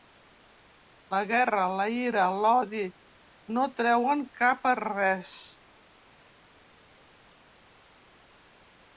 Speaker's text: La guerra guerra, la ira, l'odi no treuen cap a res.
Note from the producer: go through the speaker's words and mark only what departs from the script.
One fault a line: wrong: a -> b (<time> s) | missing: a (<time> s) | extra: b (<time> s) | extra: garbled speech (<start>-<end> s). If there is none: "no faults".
missing: guerra (1.6 s)